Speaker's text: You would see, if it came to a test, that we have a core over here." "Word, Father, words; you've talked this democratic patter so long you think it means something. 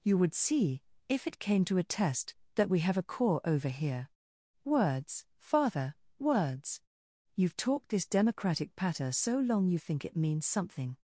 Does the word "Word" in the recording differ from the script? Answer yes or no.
yes